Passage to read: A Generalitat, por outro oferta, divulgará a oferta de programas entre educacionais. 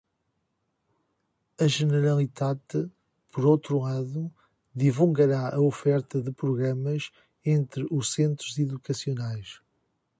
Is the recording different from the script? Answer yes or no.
yes